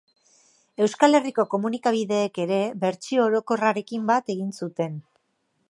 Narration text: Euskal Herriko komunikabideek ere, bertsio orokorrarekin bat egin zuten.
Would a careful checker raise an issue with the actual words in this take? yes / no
no